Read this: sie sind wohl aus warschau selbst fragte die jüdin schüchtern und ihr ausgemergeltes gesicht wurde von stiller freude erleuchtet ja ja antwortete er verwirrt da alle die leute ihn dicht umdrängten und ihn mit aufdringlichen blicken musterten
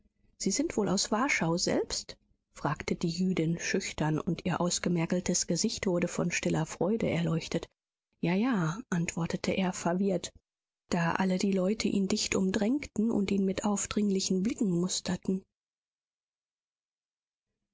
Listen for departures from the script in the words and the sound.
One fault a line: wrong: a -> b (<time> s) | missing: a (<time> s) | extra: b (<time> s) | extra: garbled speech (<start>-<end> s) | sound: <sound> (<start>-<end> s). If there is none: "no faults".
no faults